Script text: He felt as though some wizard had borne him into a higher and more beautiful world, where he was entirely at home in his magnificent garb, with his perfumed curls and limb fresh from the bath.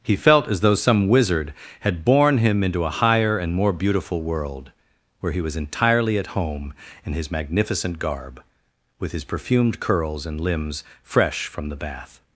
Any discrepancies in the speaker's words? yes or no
yes